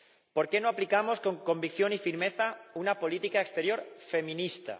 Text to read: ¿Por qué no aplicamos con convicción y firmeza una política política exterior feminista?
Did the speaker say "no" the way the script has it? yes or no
yes